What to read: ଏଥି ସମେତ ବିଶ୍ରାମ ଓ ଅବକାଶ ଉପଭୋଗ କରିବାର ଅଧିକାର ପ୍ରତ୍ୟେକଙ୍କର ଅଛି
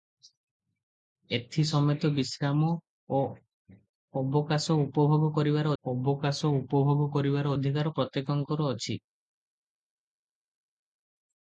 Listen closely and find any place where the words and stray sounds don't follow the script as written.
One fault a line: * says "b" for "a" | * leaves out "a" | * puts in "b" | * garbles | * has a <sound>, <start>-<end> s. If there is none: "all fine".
* puts in "ଅବକାଶ ଉପଭୋଗ କରିବାର"